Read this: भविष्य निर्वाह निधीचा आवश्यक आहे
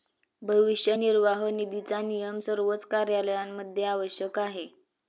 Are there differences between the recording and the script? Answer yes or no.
yes